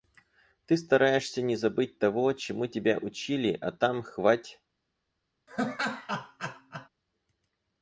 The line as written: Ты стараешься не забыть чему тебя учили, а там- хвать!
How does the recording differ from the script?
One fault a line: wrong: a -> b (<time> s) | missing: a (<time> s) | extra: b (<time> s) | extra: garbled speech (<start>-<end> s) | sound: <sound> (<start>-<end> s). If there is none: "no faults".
extra: того (2.0 s)
sound: laugh (5.5-6.9 s)